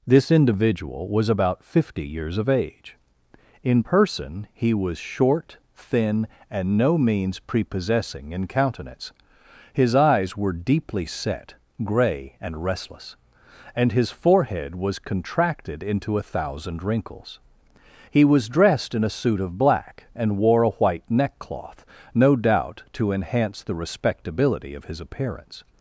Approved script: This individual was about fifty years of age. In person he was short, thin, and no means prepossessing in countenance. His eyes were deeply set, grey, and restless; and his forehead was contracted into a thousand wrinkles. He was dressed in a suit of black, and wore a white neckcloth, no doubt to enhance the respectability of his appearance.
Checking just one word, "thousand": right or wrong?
right